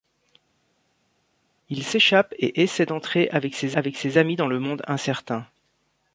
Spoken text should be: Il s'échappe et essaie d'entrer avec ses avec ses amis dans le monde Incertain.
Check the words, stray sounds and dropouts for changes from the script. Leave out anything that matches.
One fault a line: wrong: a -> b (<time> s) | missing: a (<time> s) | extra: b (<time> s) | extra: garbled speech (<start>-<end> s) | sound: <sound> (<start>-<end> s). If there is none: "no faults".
no faults